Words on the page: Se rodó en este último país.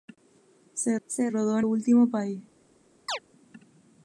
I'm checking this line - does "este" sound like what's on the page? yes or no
no